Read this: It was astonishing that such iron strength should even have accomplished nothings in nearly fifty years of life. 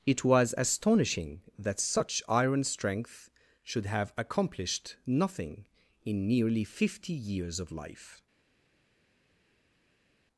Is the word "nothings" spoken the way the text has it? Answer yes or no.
no